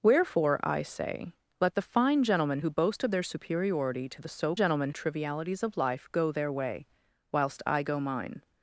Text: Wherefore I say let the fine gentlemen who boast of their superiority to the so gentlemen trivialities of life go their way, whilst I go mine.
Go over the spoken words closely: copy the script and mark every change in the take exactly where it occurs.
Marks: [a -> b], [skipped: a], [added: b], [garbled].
Wherefore I say let the fine gentlemen who boast of their superiority to the so gentlemen trivialities of life go their way, whilst I go mine.